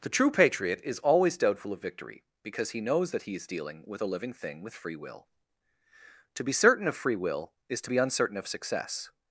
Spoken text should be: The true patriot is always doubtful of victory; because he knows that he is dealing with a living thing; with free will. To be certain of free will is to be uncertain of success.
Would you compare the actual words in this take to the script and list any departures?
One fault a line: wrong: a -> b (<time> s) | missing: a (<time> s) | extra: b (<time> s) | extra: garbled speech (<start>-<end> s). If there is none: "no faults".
no faults